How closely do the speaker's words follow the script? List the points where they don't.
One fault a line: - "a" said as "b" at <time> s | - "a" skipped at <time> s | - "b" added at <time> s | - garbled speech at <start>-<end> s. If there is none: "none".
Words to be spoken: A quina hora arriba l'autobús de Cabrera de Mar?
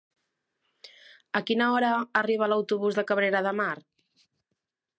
none